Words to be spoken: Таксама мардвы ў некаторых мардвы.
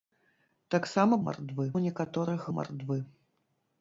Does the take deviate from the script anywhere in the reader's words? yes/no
no